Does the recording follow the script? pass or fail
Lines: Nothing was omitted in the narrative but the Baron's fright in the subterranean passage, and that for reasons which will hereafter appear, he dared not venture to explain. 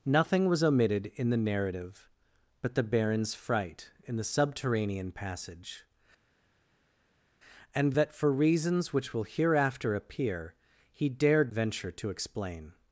fail